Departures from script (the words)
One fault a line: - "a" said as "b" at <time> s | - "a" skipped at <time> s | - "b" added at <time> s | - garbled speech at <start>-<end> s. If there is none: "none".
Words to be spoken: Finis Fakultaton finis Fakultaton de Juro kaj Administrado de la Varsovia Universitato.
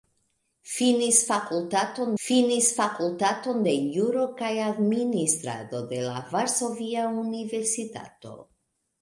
none